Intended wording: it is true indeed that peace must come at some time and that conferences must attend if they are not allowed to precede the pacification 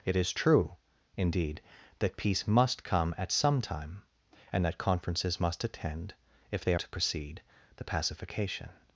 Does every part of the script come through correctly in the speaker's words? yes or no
no